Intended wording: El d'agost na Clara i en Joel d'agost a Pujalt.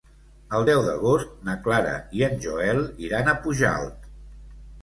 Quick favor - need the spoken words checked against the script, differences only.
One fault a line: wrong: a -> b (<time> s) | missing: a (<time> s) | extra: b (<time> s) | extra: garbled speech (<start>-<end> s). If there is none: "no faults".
extra: deu (0.7 s)
wrong: d'agost -> iran (3.1 s)